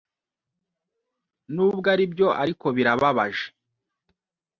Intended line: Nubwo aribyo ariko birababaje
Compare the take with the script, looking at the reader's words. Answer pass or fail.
pass